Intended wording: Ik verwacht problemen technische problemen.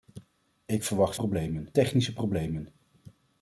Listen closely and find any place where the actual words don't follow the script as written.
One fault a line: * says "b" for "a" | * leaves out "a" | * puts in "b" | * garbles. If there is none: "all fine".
all fine